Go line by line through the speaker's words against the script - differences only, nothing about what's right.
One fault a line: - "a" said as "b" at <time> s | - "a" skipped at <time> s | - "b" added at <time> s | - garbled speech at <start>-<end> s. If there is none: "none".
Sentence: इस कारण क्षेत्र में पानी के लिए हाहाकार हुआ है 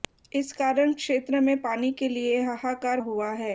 none